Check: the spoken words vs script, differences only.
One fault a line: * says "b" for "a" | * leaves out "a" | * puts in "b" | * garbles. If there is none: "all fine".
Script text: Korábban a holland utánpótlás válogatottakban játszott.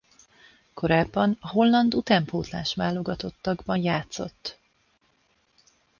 all fine